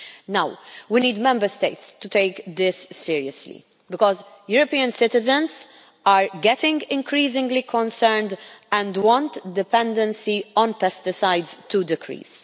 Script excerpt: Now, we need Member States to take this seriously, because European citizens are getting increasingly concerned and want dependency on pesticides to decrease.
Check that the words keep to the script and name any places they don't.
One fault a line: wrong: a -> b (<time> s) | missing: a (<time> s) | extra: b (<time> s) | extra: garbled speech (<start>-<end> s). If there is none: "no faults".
no faults